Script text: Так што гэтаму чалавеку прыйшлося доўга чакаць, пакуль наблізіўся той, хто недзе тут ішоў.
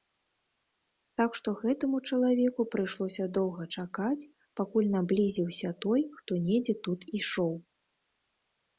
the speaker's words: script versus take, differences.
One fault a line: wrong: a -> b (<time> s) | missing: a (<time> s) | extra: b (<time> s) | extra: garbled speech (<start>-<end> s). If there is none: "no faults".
no faults